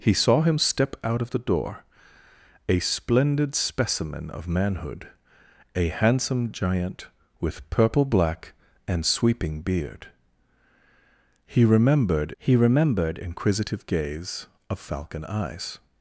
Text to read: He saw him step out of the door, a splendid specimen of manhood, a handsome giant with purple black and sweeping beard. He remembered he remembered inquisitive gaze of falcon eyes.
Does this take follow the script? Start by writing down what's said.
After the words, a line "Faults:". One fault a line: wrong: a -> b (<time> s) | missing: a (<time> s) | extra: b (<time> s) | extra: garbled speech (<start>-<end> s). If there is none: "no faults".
He saw him step out of the door, a splendid specimen of manhood, a handsome giant with purple black and sweeping beard. He remembered he remembered inquisitive gaze of falcon eyes.
Faults:
no faults